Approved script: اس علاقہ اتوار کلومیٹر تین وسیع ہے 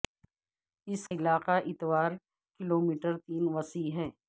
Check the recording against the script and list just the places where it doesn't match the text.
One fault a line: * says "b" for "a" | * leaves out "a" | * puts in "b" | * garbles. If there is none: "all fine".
all fine